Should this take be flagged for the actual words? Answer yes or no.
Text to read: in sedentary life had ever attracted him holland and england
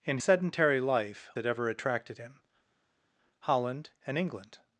no